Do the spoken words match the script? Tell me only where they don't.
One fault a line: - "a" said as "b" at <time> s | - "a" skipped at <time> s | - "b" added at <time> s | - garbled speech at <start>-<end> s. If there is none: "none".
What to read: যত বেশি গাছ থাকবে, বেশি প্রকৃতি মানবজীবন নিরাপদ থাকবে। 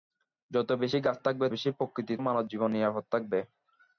none